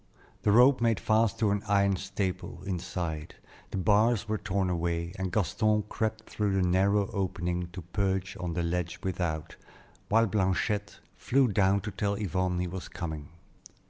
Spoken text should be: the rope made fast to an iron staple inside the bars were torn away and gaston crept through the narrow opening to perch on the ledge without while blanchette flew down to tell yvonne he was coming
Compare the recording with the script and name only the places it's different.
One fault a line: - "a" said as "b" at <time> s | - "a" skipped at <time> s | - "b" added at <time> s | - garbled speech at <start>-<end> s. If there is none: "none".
none